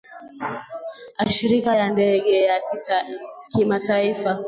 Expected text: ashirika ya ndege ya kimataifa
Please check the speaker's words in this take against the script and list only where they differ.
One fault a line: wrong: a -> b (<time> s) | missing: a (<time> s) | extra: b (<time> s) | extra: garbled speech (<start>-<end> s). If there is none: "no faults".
no faults